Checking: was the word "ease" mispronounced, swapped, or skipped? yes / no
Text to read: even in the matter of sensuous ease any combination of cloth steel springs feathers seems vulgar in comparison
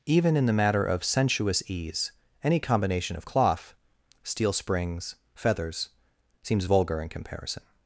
no